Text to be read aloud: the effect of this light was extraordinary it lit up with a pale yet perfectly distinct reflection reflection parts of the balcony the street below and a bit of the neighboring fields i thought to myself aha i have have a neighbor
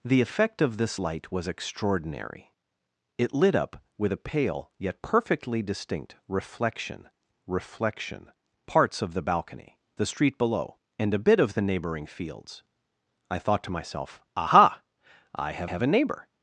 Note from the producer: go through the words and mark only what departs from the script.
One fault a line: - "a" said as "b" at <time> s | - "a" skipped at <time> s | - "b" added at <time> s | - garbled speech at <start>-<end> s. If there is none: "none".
none